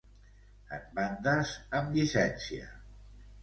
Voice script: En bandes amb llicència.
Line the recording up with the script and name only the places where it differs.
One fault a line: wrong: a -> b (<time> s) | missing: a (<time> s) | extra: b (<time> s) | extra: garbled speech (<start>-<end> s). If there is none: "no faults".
no faults